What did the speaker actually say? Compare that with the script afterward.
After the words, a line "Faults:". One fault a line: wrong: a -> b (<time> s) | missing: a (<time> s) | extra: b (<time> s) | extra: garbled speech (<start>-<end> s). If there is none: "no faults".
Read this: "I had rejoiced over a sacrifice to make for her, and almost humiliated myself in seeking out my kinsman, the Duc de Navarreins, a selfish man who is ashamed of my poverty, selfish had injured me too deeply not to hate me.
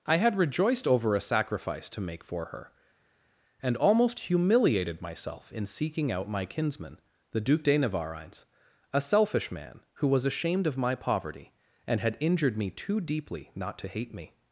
"I had rejoiced over a sacrifice to make for her, and almost humiliated myself in seeking out my kinsman, the Duc de Navarreins, a selfish man who was ashamed of my poverty, and had injured me too deeply not to hate me.
Faults:
wrong: is -> was (10.1 s)
wrong: selfish -> and (11.9 s)